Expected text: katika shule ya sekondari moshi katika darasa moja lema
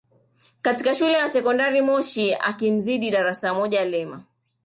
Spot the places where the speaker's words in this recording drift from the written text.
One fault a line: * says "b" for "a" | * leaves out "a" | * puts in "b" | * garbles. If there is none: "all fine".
* says "akimzidi" for "katika"